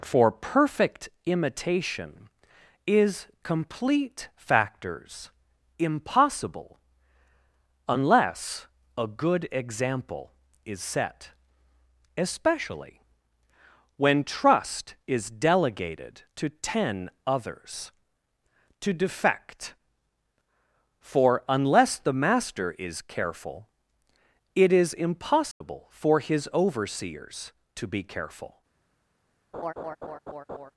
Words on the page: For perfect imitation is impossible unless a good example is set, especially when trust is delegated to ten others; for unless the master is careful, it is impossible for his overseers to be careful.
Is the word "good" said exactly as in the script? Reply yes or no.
yes